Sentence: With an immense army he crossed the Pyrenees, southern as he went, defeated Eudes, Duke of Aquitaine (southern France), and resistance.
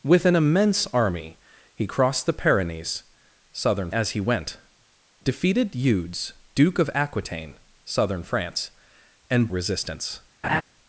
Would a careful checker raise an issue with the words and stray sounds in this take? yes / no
yes